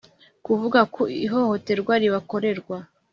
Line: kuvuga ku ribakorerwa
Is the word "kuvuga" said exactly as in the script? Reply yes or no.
yes